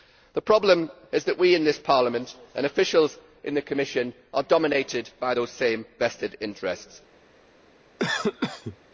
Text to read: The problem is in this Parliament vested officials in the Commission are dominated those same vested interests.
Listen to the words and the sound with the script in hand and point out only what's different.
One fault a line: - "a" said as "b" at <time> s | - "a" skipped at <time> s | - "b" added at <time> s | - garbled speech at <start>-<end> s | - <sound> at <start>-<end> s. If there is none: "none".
- "that we" added at 1.2 s
- "vested" said as "and" at 2.5 s
- "by" added at 5.2 s
- cough at 8.0-8.8 s